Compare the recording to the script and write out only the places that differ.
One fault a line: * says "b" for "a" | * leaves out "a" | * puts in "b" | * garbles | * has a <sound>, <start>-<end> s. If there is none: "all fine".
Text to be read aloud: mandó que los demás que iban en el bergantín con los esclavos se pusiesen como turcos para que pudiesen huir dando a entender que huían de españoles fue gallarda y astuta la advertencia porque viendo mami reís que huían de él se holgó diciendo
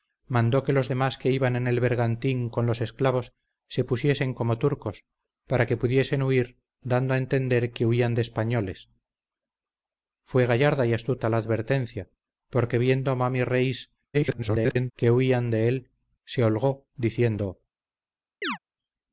* garbles
* has a chirp, 18.4-18.6 s